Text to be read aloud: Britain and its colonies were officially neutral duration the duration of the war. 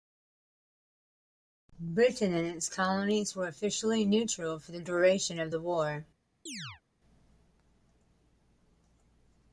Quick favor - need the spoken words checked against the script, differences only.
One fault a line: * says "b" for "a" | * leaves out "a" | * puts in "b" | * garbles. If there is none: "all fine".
* says "for" for "duration"